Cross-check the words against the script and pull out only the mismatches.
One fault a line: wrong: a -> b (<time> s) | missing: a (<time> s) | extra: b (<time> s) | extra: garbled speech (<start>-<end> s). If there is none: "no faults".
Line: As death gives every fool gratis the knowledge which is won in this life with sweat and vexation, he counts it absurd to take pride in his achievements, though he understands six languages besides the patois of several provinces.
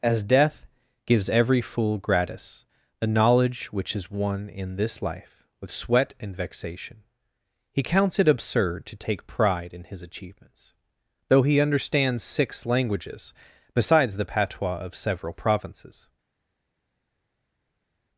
no faults